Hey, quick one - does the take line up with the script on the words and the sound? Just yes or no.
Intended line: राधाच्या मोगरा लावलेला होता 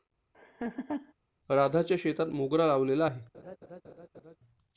no